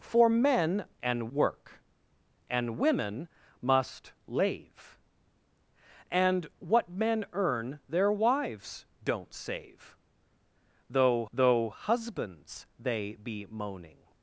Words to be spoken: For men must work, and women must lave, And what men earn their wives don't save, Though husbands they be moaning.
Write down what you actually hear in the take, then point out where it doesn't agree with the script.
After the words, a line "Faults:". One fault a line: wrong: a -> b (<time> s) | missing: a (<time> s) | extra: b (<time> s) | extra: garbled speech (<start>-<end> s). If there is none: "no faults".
For men and work, and women must lave, And what men earn their wives don't save, Though Though husbands they be moaning.
Faults:
wrong: must -> and (1.0 s)
extra: Though (11.3 s)